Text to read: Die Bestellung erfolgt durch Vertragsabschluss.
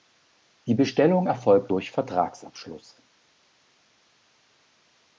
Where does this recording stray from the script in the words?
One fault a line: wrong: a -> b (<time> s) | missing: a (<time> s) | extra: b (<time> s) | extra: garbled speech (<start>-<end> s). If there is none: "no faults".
no faults